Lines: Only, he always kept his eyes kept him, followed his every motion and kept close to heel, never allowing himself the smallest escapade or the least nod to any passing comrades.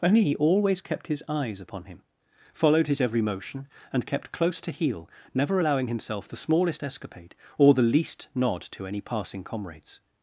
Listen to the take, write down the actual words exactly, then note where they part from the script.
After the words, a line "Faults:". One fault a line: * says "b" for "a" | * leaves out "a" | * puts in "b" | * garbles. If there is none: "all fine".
Only, he always kept his eyes upon him, followed his every motion and kept close to heel, never allowing himself the smallest escapade or the least nod to any passing comrades.
Faults:
* says "upon" for "kept"